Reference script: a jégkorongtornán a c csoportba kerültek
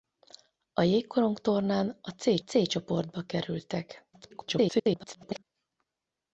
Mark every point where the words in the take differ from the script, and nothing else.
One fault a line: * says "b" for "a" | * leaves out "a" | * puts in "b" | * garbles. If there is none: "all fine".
* puts in "c"
* garbles